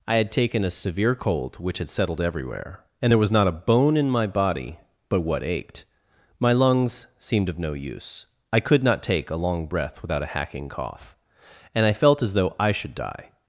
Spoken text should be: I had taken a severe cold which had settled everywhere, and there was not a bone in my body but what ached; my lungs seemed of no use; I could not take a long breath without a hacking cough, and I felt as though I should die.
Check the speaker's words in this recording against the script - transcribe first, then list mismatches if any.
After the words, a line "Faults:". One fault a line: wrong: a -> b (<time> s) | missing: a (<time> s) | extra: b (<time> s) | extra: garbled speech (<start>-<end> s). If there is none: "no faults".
I had taken a severe cold which had settled everywhere, and there was not a bone in my body but what ached; my lungs seemed of no use; I could not take a long breath without a hacking cough, and I felt as though I should die.
Faults:
no faults